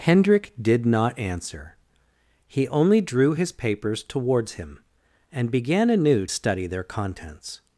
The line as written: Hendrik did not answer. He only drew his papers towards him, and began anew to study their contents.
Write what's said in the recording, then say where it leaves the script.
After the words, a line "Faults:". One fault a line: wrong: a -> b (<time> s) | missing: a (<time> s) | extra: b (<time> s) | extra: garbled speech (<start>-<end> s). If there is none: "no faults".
Hendrik did not answer. He only drew his papers towards him, and began anew study their contents.
Faults:
missing: to (6.2 s)